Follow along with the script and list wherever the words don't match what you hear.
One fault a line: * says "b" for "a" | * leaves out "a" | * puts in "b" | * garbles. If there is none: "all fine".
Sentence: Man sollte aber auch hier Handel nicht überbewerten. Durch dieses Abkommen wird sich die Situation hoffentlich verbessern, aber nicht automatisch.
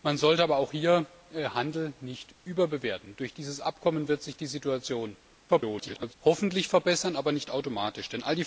* garbles